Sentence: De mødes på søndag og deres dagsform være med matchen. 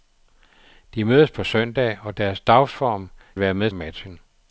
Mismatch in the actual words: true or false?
false